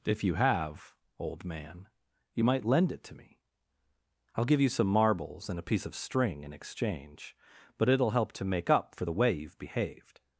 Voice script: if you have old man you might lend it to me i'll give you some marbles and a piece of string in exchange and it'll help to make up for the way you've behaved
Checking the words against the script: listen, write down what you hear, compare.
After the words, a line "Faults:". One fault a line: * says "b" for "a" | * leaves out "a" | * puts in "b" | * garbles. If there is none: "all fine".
if you have old man you might lend it to me i'll give you some marbles and a piece of string in exchange but it'll help to make up for the way you've behaved
Faults:
* says "but" for "and"